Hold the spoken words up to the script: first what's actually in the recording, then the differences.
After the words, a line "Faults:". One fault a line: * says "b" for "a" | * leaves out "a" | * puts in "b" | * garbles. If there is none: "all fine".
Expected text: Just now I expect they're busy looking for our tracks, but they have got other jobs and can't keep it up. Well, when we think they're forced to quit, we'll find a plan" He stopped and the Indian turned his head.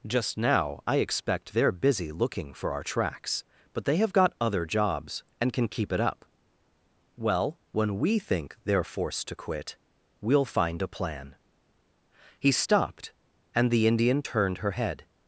Just now I expect they're busy looking for our tracks, but they have got other jobs and can keep it up. Well, when we think they're forced to quit, we'll find a plan" He stopped and the Indian turned her head.
Faults:
* says "can" for "can't"
* says "her" for "his"